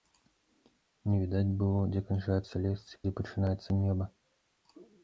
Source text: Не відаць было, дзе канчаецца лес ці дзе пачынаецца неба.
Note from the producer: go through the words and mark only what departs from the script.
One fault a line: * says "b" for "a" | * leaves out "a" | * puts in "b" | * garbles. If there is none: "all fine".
all fine